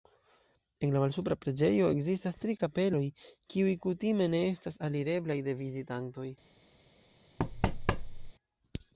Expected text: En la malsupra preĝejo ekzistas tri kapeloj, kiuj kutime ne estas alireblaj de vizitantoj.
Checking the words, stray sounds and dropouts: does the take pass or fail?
fail